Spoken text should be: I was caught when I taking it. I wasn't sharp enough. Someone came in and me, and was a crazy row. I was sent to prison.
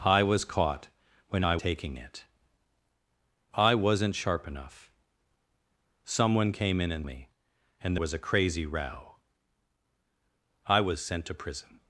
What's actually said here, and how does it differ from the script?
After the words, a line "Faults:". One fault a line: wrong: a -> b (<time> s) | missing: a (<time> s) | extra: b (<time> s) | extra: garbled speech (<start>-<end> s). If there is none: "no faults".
I was caught when I taking it. I wasn't sharp enough. Someone came in and me, and was a crazy row. I was sent to prison.
Faults:
no faults